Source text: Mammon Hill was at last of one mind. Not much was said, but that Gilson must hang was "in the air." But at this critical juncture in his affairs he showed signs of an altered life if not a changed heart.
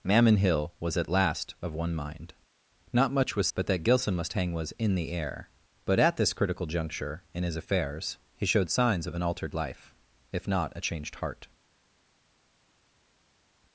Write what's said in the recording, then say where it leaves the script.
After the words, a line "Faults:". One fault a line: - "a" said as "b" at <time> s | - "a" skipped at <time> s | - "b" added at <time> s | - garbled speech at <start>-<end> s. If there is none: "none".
Mammon Hill was at last of one mind. Not much was but that Gilson must hang was "in the air." But at this critical juncture in his affairs he showed signs of an altered life if not a changed heart.
Faults:
- "said" skipped at 3.5 s